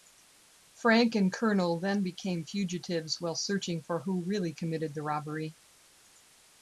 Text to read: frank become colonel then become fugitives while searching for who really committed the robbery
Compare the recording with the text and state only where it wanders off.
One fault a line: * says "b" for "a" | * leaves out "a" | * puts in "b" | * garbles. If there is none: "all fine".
* says "and" for "become"